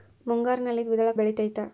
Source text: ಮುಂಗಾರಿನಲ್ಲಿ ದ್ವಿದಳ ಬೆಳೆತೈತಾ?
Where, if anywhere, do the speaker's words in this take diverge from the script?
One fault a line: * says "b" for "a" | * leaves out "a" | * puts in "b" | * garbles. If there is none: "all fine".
all fine